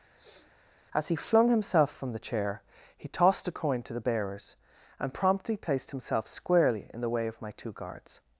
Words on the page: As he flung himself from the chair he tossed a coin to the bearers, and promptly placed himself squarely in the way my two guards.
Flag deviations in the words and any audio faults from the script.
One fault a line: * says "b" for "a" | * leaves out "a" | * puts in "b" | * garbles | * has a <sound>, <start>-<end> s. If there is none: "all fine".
* has a sniff, 0.1-0.5 s
* puts in "of"